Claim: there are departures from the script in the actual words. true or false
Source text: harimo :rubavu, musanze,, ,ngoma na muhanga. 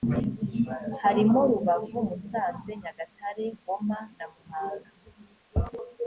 true